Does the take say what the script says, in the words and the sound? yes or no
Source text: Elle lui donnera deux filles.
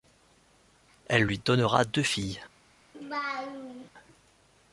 no